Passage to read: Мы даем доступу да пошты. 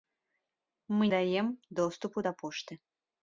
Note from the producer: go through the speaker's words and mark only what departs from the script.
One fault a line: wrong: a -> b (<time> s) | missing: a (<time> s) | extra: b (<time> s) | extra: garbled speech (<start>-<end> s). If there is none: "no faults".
no faults